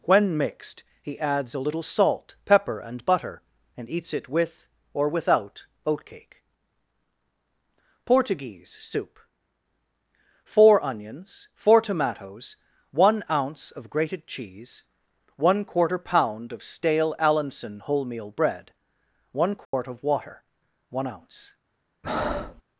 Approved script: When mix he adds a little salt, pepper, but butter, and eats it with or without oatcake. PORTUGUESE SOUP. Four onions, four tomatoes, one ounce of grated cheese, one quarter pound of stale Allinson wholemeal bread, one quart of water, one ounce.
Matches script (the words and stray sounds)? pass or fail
fail